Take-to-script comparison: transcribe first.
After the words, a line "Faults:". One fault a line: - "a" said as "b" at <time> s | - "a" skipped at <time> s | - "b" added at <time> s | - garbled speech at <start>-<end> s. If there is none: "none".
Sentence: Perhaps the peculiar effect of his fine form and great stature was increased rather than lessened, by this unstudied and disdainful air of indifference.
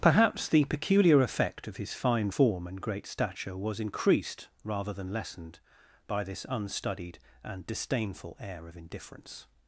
Perhaps the peculiar effect of his fine form and great stature was increased rather than lessened, by this unstudied and disdainful air of indifference.
Faults:
none